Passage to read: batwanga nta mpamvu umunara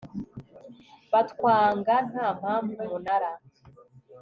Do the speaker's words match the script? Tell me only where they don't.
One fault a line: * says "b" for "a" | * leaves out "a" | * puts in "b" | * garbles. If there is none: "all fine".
all fine